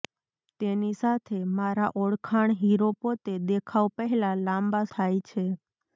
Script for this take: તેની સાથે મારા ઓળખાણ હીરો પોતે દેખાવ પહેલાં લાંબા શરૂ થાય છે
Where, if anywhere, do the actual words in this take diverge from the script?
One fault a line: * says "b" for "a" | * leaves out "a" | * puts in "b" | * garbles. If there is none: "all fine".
* leaves out "શરૂ"